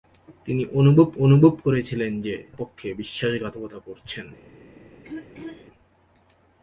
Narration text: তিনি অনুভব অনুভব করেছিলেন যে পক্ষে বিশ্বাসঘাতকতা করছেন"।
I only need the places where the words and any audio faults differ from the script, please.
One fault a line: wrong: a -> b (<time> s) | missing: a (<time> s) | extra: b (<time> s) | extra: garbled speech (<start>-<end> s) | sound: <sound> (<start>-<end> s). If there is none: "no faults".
sound: throat clearing (5.0-5.7 s)